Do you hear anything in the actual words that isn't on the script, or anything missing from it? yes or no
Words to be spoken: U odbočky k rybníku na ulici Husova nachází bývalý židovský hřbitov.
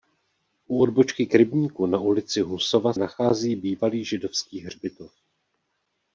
no